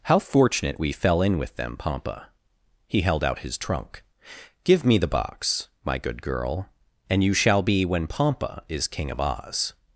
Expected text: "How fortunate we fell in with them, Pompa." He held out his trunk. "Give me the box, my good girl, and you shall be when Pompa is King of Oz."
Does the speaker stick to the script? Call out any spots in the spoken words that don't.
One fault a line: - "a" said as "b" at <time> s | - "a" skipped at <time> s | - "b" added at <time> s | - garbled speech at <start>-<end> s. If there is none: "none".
none